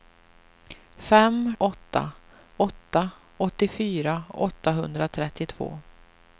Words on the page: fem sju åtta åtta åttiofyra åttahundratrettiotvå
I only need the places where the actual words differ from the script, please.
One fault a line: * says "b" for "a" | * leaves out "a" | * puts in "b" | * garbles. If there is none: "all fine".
* leaves out "sju"